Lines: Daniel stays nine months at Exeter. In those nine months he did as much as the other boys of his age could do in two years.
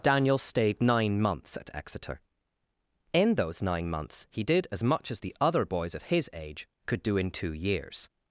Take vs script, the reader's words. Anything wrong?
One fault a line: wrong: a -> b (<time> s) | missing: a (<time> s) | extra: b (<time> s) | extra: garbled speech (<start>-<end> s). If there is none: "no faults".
wrong: stays -> stayed (0.4 s)